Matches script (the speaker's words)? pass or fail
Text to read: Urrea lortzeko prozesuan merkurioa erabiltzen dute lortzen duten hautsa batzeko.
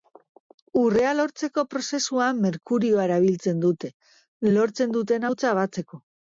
pass